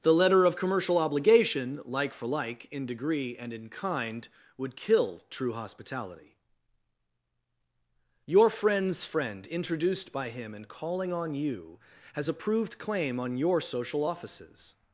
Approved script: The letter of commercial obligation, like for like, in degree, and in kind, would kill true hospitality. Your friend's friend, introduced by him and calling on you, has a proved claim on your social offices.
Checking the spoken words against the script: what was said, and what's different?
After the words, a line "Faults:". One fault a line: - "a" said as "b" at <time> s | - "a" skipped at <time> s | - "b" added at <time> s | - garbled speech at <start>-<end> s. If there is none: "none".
The letter of commercial obligation, like for like, in degree, and in kind, would kill true hospitality. Your friend's friend, introduced by him and calling on you, has a proved claim on your social offices.
Faults:
none